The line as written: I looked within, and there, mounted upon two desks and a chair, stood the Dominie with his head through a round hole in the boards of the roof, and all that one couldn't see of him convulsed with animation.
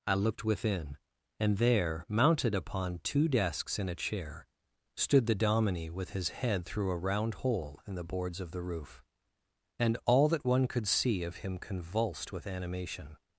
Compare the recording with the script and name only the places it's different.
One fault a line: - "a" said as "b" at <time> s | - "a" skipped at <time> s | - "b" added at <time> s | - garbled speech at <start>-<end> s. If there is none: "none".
- "couldn't" said as "could" at 10.7 s